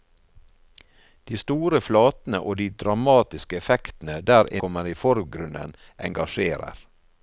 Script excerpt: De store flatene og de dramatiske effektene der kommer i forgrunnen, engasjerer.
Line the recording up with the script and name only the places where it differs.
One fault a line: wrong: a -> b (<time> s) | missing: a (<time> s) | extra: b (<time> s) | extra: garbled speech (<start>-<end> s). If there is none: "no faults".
no faults